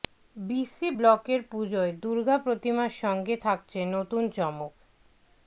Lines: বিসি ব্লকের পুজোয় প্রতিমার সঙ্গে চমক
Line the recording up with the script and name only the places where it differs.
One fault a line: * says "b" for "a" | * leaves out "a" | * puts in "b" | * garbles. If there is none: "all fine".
* puts in "দুর্গা"
* puts in "থাকছে নতুন"